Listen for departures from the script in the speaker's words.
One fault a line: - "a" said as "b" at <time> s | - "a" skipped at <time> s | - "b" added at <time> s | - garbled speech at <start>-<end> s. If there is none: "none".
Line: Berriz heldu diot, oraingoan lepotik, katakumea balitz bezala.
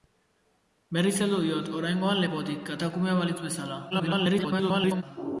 - garbled speech at 3.9-5.0 s